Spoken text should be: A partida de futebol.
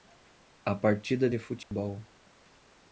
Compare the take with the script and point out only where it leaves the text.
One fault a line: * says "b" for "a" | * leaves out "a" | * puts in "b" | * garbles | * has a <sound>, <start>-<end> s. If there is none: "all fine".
* has a dropout, 1.6-1.7 s